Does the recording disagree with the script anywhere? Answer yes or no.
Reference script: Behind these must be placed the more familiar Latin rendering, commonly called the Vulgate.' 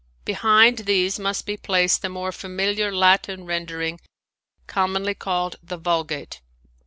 no